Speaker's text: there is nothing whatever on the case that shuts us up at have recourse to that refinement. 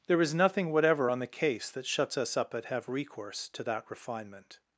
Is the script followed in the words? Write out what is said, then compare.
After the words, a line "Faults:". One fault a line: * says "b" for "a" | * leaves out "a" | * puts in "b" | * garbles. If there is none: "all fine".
there is nothing whatever on the case that shuts us up at have recourse to that refinement.
Faults:
all fine